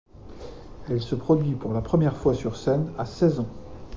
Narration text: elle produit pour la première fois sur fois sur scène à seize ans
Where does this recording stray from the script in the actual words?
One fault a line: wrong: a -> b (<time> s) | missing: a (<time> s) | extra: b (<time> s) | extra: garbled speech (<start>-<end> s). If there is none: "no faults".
extra: se (1.0 s)
missing: fois sur (2.5 s)